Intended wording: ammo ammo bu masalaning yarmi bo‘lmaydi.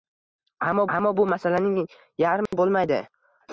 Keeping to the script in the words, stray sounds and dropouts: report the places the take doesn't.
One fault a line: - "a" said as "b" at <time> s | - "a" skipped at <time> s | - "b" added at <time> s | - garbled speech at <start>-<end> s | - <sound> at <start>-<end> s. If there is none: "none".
- dropout at 2.5-2.5 s